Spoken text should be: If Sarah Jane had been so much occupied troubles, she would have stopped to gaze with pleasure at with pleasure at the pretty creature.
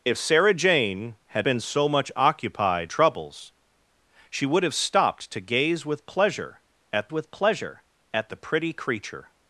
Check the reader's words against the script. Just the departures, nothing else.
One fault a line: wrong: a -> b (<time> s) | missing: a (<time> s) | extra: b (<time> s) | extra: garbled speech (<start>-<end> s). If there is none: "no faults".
no faults